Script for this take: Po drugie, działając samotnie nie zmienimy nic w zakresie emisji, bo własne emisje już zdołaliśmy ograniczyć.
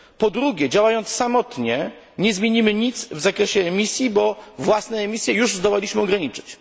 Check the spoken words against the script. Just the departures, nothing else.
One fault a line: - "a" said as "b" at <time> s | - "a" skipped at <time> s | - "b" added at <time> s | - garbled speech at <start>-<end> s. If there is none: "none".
none